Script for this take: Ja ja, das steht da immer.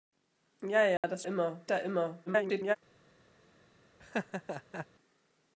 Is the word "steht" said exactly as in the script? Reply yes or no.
no